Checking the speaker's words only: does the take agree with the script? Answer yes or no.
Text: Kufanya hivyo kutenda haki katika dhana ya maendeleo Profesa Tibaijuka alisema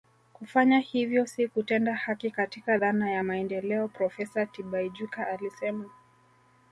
no